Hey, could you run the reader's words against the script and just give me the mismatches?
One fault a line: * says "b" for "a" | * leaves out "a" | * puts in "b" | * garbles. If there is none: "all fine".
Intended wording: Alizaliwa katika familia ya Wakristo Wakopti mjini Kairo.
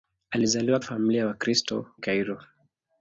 * leaves out "katika"
* leaves out "Wakopti mjini"